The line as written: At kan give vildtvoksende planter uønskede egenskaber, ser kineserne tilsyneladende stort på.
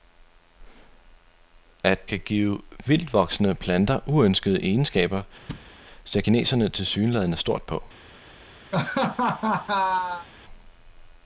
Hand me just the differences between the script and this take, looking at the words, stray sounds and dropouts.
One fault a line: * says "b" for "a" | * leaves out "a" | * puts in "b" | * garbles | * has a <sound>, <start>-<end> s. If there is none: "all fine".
* has a thud, 5.5-5.7 s
* has a laugh, 8.7-10.3 s